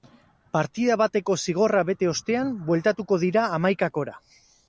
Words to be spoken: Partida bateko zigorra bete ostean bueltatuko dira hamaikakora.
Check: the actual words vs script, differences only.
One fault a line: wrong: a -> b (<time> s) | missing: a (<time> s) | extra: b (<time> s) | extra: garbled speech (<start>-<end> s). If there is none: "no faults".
no faults